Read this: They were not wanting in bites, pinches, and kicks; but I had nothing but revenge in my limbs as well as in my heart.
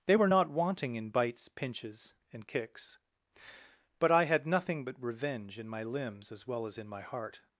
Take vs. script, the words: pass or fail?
pass